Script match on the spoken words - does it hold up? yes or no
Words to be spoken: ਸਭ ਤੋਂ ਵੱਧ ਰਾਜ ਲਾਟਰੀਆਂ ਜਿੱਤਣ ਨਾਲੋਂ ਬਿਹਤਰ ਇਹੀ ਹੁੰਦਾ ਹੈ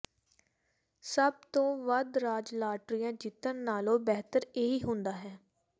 yes